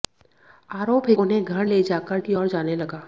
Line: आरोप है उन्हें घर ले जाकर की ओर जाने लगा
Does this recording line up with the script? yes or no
yes